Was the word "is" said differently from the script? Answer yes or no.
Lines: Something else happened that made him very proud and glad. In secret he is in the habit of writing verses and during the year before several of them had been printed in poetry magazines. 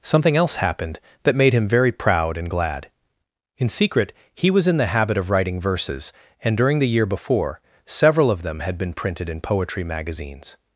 yes